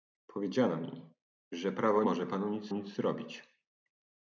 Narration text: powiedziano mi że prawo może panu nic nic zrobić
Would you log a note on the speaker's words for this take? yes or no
no